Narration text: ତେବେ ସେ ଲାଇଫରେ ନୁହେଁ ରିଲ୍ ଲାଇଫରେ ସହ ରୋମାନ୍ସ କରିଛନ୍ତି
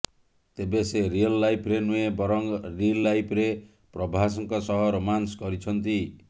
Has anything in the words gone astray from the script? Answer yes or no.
yes